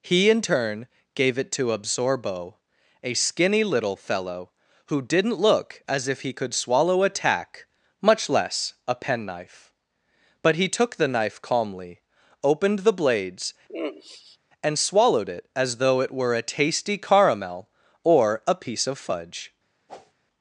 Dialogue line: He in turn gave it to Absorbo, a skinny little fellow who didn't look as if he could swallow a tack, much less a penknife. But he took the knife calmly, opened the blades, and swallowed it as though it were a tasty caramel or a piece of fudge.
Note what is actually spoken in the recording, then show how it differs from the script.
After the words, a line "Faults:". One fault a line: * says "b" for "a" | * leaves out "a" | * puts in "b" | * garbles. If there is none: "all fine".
He in turn gave it to Absorbo, a skinny little fellow who didn't look as if he could swallow a tack, much less a penknife. But he took the knife calmly, opened the blades, and swallowed it as though it were a tasty caramel or a piece of fudge.
Faults:
all fine